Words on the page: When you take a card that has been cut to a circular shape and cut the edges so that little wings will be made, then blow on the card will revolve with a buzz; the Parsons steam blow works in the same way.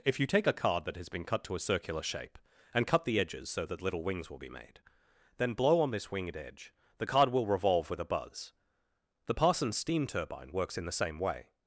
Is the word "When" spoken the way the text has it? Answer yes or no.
no